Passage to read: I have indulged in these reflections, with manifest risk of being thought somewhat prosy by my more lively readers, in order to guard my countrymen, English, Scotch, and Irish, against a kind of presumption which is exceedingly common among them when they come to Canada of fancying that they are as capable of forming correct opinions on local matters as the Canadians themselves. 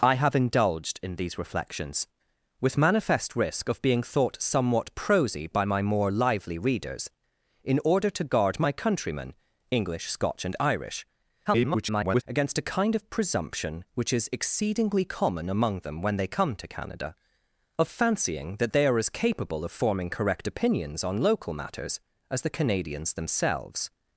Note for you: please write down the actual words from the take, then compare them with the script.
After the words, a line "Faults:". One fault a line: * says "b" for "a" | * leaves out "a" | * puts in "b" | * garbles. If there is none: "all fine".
I have indulged in these reflections, with manifest risk of being thought somewhat prosy by my more lively readers, in order to guard my countrymen, English, Scotch, and Irish, [garbled] against a kind of presumption which is exceedingly common among them when they come to Canada of fancying that they are as capable of forming correct opinions on local matters as the Canadians themselves.
Faults:
* garbles